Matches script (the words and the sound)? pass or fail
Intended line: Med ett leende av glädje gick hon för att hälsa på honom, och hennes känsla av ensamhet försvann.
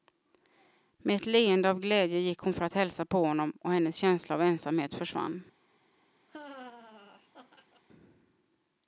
fail